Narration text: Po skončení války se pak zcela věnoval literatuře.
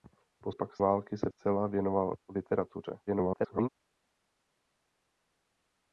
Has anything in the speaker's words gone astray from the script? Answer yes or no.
yes